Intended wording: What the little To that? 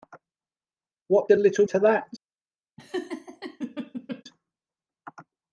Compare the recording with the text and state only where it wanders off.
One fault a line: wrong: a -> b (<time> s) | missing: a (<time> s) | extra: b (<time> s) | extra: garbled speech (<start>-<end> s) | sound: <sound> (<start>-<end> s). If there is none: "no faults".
sound: laugh (2.8-4.2 s)